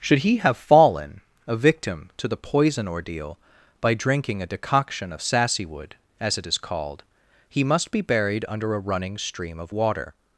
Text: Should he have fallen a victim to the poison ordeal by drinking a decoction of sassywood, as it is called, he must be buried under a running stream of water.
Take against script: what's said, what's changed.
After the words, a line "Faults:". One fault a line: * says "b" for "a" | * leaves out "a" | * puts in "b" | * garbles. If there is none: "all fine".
Should he have fallen a victim to the poison ordeal by drinking a decoction of sassywood, as it is called, he must be buried under a running stream of water.
Faults:
all fine